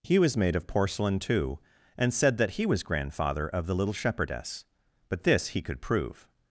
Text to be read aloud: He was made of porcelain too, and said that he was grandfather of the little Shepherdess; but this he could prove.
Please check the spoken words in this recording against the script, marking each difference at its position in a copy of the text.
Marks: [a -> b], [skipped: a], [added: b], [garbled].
He was made of porcelain too, and said that he was grandfather of the little Shepherdess; but this he could prove.